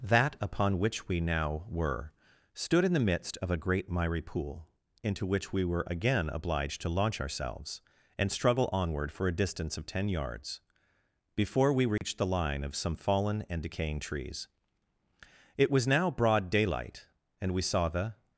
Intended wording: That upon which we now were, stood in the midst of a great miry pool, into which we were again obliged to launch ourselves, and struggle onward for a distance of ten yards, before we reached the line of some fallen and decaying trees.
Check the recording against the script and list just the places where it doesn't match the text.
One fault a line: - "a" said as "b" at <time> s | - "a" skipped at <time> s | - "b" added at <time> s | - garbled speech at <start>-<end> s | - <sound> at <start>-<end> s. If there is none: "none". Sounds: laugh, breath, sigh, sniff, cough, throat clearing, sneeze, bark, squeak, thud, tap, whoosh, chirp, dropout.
- dropout at 12.0-12.0 s
- "It was now broad daylight and we saw the" added at 15.6 s